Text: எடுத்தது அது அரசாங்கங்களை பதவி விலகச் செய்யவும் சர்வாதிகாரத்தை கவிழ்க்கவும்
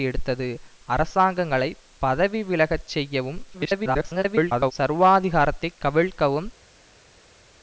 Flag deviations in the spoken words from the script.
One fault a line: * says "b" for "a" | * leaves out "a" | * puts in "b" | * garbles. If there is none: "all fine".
* leaves out "அது"
* garbles